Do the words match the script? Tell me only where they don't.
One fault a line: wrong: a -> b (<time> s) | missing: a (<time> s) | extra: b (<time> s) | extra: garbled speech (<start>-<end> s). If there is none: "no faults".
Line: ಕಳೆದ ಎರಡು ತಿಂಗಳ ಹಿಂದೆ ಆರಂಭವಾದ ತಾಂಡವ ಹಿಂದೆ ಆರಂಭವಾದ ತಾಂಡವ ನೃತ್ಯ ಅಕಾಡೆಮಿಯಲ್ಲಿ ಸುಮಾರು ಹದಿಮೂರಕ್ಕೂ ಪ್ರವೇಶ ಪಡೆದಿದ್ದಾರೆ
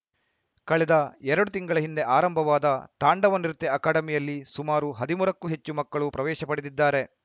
missing: ಹಿಂದೆ ಆರಂಭವಾದ ತಾಂಡವ (3.4 s)
extra: ಹೆಚ್ಚು ಮಕ್ಕಳು (5.5 s)